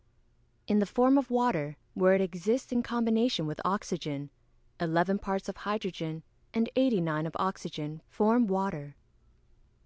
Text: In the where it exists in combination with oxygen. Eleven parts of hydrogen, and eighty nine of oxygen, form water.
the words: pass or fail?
fail